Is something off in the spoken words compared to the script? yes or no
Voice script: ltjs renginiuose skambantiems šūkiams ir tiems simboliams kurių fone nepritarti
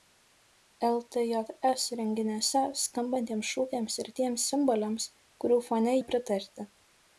no